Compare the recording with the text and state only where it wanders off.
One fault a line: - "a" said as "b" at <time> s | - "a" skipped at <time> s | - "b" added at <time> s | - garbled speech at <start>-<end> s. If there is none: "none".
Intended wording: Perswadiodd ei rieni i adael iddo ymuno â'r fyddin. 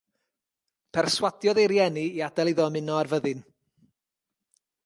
none